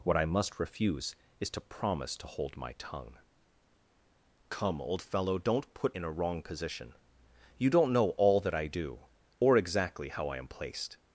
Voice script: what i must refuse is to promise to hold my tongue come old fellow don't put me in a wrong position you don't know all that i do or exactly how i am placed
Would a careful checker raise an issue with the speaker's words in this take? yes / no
yes